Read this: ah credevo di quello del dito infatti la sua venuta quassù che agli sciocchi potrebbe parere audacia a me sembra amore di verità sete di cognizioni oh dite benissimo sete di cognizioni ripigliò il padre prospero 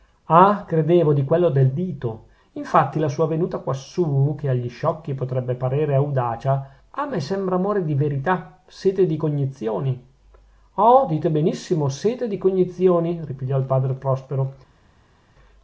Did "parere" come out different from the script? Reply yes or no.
no